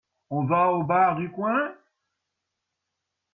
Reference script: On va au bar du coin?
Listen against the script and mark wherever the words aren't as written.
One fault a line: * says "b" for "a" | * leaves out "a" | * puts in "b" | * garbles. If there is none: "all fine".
all fine